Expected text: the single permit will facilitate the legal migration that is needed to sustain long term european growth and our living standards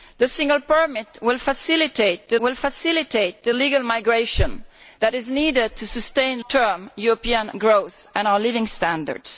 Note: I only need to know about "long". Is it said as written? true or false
false